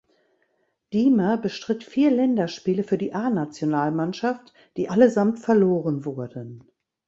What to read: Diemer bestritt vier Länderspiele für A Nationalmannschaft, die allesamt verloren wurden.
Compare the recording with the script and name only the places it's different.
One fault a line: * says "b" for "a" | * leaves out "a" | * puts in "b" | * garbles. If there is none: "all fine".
* puts in "die"